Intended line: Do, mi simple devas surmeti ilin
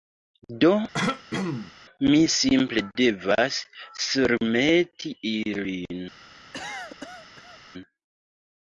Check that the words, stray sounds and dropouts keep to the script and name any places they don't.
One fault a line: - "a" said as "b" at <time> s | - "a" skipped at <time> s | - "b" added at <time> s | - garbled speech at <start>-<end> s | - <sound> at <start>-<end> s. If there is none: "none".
- throat clearing at 0.9-1.7 s
- cough at 6.5-7.6 s